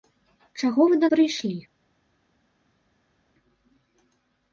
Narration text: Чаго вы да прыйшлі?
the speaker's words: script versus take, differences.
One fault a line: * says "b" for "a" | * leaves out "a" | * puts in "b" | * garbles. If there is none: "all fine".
all fine